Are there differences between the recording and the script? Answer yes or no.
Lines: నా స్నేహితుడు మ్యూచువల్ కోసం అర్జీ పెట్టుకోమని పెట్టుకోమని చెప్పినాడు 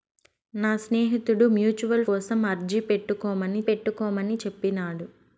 no